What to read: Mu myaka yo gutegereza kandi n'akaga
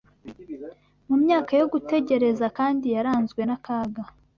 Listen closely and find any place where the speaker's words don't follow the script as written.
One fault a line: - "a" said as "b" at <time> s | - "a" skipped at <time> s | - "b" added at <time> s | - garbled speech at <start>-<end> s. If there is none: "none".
- "yaranzwe" added at 2.9 s